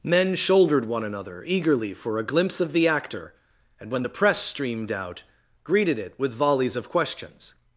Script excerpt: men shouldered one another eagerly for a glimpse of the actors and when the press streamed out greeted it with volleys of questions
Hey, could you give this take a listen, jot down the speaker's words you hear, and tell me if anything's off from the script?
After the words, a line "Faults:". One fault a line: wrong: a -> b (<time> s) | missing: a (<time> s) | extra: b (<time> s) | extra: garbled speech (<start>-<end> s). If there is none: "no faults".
men shouldered one another eagerly for a glimpse of the actor and when the press streamed out greeted it with volleys of questions
Faults:
wrong: actors -> actor (2.9 s)